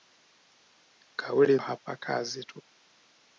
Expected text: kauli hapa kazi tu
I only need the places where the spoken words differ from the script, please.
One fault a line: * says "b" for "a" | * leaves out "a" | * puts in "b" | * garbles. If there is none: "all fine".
all fine